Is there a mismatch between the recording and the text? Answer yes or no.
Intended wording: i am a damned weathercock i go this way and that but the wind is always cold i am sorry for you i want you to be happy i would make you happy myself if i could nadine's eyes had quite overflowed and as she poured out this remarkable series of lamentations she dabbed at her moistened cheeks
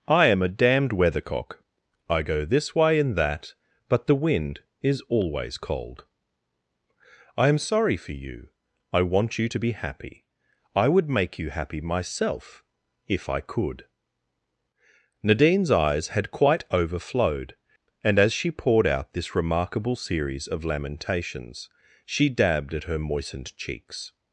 no